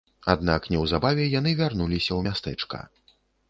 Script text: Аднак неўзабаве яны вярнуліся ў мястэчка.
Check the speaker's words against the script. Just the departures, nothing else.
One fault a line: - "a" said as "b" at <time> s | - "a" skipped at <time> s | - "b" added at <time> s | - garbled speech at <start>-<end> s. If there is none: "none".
none